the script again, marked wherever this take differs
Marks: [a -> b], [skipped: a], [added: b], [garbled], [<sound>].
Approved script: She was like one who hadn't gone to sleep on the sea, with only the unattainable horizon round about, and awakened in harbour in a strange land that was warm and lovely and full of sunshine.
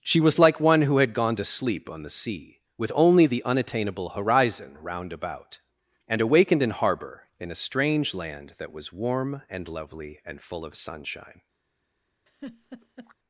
She was like one who [hadn't -> had] gone to sleep on the sea, with only the unattainable horizon round about, and awakened in harbour in a strange land that was warm and lovely and full of sunshine. [laugh]